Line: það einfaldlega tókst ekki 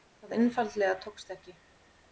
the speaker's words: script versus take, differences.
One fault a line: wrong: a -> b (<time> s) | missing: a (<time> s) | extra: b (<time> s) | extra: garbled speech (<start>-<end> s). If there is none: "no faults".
no faults